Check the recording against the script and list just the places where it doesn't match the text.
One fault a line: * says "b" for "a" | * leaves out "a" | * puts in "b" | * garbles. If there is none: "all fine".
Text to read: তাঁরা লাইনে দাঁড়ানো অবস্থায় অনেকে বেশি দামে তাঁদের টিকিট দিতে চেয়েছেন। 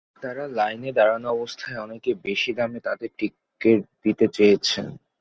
all fine